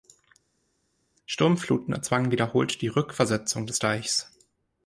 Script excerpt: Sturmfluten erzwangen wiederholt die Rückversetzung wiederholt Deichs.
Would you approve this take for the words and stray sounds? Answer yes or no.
no